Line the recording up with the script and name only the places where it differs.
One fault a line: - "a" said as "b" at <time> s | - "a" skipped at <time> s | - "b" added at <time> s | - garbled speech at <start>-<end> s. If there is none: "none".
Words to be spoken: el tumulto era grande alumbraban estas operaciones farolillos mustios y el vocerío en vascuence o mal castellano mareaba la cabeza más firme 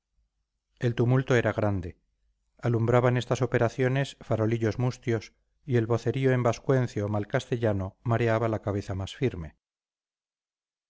none